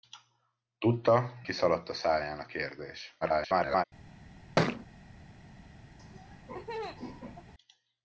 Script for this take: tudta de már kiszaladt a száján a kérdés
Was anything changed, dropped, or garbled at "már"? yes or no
yes